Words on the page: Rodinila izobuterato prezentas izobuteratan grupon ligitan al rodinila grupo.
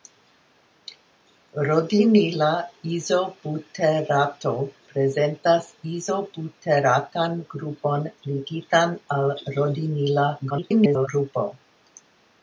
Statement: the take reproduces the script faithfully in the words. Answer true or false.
false